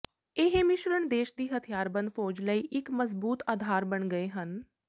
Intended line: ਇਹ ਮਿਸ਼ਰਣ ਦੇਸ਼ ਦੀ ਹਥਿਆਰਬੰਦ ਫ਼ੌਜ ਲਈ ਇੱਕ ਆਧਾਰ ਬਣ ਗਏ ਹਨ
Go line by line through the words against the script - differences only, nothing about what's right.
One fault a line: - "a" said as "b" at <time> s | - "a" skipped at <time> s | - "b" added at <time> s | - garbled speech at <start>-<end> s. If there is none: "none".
- "ਮਜ਼ਬੂਤ" added at 2.9 s